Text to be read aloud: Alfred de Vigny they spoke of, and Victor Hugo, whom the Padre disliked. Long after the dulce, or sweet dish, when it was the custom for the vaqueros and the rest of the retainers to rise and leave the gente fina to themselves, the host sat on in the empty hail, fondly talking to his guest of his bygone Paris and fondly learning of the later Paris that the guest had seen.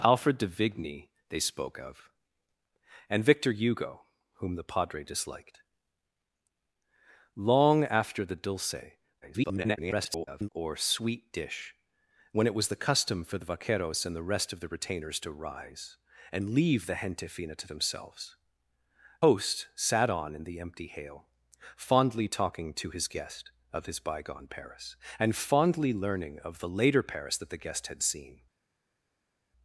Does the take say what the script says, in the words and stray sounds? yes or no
no